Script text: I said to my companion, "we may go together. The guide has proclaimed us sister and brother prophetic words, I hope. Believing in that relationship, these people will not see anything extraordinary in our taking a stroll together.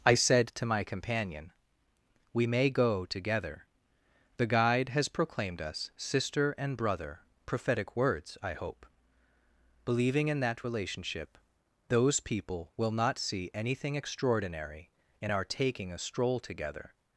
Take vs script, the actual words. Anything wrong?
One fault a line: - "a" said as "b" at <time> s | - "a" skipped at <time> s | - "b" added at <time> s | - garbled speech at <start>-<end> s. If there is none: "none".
- "these" said as "those" at 11.9 s